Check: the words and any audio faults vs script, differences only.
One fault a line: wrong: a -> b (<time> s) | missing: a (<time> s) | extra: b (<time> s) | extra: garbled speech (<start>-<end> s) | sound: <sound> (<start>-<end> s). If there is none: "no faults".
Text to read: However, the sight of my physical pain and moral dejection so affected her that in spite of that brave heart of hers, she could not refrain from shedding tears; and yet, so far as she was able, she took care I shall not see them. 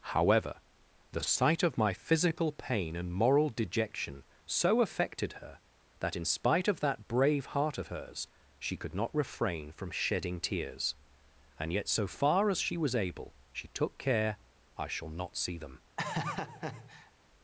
sound: laugh (16.0-17.1 s)